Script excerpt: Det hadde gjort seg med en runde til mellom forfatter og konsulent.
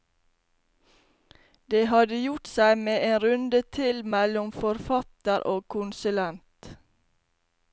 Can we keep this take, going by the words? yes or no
yes